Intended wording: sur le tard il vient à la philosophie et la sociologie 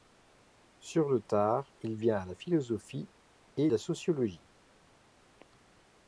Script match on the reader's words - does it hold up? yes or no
yes